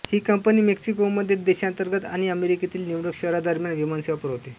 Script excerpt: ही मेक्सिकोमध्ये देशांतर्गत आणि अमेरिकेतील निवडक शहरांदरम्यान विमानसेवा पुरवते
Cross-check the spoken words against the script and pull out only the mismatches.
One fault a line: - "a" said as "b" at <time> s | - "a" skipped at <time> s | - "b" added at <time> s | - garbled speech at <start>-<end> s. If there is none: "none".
- "कंपनी" added at 0.2 s